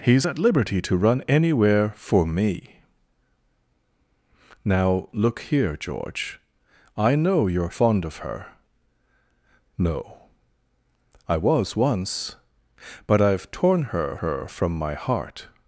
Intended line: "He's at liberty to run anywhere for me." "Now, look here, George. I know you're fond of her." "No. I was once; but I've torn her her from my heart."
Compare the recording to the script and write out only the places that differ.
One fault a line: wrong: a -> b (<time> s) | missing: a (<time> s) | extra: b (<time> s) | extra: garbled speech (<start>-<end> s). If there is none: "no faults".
no faults